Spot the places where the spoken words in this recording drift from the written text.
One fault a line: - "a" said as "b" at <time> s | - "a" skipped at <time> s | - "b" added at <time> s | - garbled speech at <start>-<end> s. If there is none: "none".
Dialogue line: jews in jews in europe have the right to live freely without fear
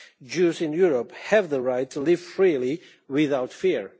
- "jews in" skipped at 0.7 s